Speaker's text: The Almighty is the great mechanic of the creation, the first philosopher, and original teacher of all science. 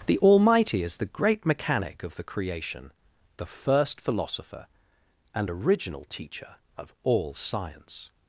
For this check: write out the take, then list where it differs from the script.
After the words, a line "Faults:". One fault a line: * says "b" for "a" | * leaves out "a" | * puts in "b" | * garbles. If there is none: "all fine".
The Almighty is the great mechanic of the creation, the first philosopher, and original teacher of all science.
Faults:
all fine